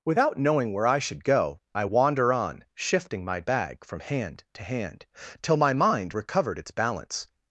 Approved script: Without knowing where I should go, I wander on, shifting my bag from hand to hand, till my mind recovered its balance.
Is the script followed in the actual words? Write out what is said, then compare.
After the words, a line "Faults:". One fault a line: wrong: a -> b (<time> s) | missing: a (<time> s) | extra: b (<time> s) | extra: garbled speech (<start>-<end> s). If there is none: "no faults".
Without knowing where I should go, I wander on, shifting my bag from hand to hand, till my mind recovered its balance.
Faults:
no faults